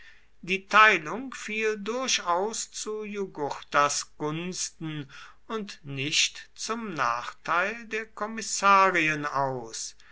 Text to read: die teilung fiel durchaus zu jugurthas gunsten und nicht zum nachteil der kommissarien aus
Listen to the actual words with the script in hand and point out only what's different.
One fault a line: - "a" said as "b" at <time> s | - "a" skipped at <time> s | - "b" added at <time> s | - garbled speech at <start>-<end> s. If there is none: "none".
none